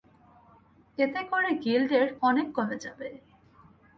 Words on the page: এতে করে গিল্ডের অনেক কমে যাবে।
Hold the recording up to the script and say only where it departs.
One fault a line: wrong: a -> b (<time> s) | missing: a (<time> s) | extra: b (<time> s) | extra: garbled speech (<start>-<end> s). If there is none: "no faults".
no faults